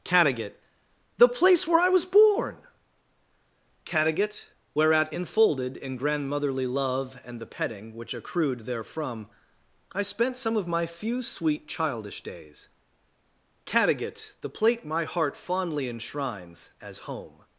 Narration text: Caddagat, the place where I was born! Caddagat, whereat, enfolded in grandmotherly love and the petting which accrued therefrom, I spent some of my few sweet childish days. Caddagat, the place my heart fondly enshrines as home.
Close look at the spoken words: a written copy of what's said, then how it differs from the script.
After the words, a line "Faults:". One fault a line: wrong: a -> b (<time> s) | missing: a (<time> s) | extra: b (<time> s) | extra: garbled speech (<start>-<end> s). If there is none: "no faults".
Caddagat, the place where I was born! Caddagat, whereat, enfolded in grandmotherly love and the petting which accrued therefrom, I spent some of my few sweet childish days. Caddagat, the plate my heart fondly enshrines as home.
Faults:
wrong: place -> plate (14.5 s)